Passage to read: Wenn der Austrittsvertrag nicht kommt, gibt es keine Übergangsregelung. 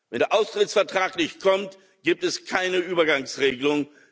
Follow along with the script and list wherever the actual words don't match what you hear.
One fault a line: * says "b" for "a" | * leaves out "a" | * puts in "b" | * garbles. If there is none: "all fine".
all fine